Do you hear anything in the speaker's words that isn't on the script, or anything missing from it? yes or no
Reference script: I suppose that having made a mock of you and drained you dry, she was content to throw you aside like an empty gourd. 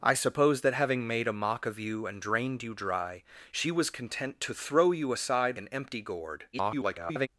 yes